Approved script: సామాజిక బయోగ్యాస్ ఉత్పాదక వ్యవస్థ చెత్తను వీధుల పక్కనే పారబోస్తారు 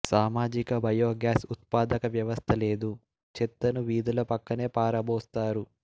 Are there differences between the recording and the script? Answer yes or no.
yes